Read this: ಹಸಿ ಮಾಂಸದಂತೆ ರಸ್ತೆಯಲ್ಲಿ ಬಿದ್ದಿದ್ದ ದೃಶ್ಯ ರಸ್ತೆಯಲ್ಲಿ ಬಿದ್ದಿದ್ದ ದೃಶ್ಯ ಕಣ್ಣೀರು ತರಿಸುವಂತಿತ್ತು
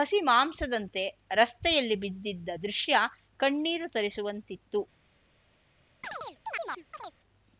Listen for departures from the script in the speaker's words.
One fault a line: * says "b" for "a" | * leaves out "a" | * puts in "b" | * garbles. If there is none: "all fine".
* leaves out "ರಸ್ತೆಯಲ್ಲಿ ಬಿದ್ದಿದ್ದ ದೃಶ್ಯ"